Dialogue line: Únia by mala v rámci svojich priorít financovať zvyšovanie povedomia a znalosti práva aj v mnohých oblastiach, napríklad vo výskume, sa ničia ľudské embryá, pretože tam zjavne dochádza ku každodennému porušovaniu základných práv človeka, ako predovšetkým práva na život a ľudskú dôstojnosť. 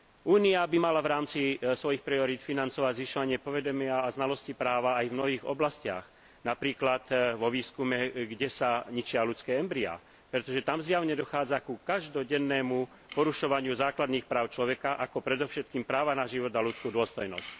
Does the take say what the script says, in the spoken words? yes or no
no